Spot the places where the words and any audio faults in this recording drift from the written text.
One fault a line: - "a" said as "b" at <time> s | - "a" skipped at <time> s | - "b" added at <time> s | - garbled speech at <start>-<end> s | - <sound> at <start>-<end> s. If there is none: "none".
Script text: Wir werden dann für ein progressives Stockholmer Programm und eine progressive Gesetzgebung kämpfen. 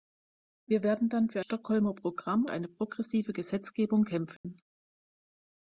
- "ein progressives" skipped at 1.4 s
- "und" skipped at 2.5 s
- dropout at 4.4-4.4 s